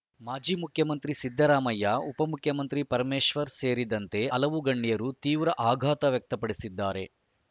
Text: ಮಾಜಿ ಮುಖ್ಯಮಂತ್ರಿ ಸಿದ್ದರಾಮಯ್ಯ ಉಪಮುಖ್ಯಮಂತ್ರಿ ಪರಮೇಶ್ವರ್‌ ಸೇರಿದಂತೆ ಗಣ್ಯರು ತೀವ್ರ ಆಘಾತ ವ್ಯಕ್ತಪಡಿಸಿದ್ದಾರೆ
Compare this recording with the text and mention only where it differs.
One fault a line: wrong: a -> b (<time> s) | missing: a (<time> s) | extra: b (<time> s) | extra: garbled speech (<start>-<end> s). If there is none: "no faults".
extra: ಹಲವು (4.3 s)